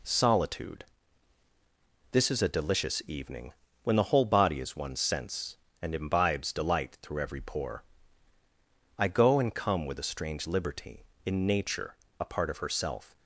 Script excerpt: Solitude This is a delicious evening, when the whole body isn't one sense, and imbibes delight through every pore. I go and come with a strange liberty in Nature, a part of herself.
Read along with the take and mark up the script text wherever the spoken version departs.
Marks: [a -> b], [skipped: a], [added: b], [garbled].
Solitude This is a delicious evening, when the whole body [isn't -> is] one sense, and imbibes delight through every pore. I go and come with a strange liberty in Nature, a part of herself.